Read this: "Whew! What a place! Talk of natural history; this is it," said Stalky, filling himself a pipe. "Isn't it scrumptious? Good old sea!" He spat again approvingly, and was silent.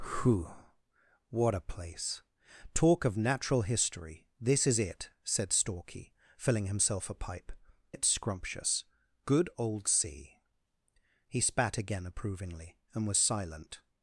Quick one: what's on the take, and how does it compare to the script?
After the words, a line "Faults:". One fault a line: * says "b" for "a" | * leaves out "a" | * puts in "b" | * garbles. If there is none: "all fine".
"Whew! What a place! Talk of natural history; this is it," said Stalky, filling himself a pipe. "It scrumptious? Good old sea!" He spat again approvingly, and was silent.
Faults:
* leaves out "Isn't"